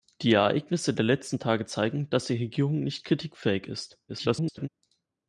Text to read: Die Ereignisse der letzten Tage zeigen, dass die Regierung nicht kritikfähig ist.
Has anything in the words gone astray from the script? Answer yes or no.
yes